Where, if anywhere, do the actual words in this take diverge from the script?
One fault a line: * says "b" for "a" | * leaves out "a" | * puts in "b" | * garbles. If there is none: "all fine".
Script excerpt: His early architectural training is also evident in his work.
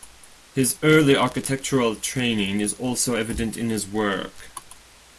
all fine